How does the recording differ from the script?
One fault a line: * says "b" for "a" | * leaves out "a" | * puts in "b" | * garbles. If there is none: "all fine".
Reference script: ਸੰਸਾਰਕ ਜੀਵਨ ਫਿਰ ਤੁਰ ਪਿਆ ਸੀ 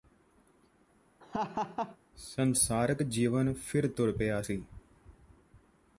all fine